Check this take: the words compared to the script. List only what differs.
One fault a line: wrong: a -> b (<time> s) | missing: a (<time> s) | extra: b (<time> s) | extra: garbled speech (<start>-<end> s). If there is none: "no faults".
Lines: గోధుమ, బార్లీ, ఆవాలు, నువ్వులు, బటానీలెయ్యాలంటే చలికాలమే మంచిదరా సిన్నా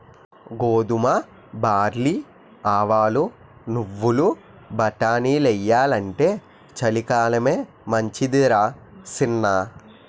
no faults